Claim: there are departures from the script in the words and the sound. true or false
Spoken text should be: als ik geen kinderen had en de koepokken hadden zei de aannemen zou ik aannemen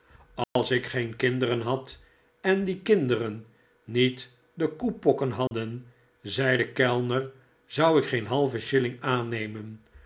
true